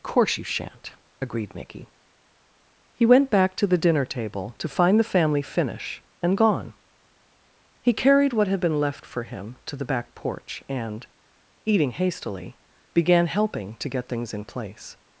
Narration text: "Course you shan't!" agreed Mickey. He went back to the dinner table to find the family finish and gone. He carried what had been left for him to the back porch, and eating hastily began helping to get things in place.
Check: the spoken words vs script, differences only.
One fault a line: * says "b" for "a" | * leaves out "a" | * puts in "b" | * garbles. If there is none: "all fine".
all fine